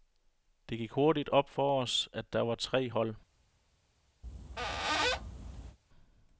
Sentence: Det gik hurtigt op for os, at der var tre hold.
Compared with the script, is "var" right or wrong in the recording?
right